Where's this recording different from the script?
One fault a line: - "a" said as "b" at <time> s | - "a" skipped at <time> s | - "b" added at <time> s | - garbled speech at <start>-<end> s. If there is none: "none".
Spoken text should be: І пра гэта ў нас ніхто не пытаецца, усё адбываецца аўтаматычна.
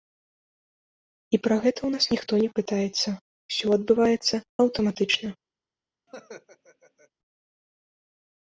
none